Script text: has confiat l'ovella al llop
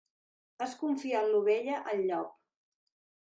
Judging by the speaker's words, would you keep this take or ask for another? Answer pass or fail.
pass